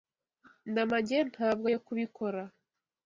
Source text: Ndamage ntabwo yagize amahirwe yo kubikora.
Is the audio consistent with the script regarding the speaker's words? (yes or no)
no